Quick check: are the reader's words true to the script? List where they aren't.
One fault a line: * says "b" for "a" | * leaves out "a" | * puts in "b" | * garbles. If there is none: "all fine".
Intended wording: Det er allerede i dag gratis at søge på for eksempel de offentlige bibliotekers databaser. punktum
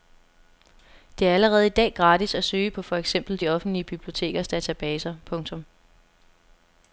all fine